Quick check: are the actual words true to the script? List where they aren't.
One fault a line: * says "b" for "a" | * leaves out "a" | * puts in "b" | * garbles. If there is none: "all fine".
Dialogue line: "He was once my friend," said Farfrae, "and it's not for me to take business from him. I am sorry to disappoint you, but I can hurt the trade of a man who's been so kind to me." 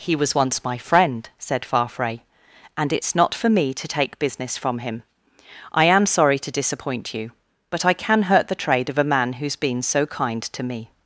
all fine